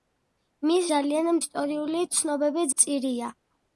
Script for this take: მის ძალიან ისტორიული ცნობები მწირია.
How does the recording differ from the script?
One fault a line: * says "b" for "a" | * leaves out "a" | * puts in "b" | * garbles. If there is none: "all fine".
all fine